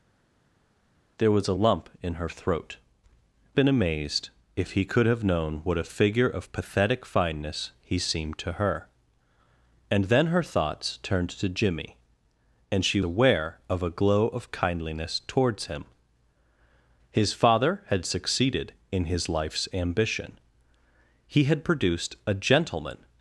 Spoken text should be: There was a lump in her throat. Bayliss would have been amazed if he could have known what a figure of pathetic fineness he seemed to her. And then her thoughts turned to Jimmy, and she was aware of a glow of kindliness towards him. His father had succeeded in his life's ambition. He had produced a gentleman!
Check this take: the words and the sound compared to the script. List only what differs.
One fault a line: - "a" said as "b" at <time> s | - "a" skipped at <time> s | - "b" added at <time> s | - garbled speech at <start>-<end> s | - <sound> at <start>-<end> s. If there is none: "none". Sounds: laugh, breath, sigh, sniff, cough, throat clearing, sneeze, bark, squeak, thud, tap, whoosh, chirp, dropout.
- "Bayliss would have" skipped at 2.8 s
- "was" skipped at 13.0 s